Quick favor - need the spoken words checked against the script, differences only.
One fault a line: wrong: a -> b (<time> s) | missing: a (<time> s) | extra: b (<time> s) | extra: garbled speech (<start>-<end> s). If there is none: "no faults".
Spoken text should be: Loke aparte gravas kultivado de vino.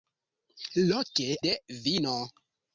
missing: aparte gravas kultivado (1.3 s)